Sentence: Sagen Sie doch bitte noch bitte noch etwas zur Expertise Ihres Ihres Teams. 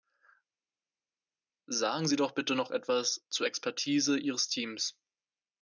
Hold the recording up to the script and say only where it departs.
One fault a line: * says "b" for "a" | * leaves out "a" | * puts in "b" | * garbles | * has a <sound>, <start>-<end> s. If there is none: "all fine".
* leaves out "bitte noch"
* leaves out "Ihres"